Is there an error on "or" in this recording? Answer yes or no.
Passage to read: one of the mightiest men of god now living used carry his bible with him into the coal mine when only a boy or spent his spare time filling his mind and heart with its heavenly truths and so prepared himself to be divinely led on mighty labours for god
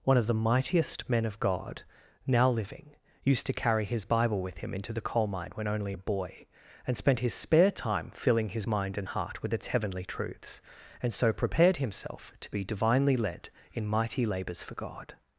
yes